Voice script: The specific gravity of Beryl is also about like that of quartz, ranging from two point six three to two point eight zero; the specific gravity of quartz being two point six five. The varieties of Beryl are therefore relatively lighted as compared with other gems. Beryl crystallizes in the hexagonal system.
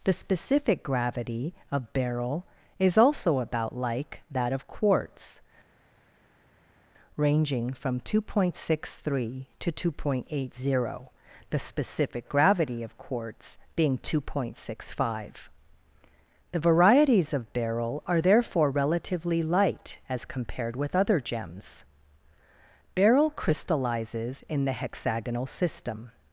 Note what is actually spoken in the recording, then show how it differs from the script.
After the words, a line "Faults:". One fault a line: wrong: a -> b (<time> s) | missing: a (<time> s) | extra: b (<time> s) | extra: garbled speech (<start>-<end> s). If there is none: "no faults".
The specific gravity of Beryl is also about like that of quartz, ranging from two point six three to two point eight zero; the specific gravity of quartz being two point six five. The varieties of Beryl are therefore relatively light as compared with other gems. Beryl crystallizes in the hexagonal system.
Faults:
wrong: lighted -> light (19.4 s)